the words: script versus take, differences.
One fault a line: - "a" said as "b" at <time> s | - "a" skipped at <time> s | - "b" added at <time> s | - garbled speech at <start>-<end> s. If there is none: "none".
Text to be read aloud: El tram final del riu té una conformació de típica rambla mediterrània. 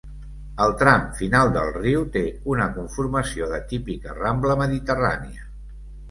none